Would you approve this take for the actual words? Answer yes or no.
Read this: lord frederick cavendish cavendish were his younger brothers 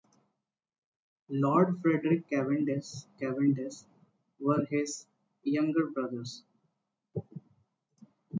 yes